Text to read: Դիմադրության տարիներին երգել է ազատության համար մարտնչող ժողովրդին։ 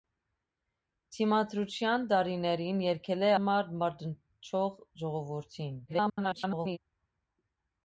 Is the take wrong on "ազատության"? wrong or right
wrong